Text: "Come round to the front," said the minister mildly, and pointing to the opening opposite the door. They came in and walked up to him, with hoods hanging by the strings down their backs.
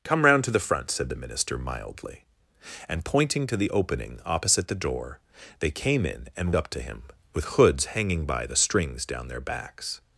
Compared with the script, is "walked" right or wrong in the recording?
wrong